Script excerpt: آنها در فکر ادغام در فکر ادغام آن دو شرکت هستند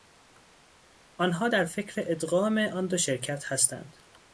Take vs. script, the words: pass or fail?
fail